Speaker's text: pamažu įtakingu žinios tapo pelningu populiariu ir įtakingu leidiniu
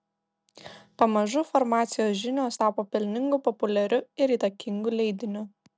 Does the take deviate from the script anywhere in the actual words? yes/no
yes